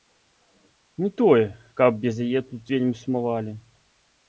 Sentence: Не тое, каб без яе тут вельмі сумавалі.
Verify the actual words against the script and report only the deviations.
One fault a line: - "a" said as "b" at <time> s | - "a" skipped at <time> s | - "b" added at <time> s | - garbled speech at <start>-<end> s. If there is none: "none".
none